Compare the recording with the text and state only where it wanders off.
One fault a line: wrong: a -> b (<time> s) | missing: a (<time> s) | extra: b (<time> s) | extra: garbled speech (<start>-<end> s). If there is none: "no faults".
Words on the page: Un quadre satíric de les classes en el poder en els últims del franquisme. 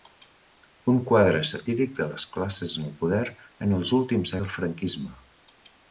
no faults